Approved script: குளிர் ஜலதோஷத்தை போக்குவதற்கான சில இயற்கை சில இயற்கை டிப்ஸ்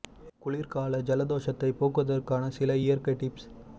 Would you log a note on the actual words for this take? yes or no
yes